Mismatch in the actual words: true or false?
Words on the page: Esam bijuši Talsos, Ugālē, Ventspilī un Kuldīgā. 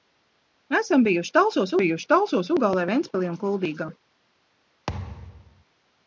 true